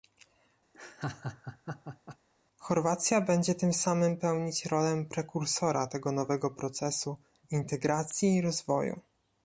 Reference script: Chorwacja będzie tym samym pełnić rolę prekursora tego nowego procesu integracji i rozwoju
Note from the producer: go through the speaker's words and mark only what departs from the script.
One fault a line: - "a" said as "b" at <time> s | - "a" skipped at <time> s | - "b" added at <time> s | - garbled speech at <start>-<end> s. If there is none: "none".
none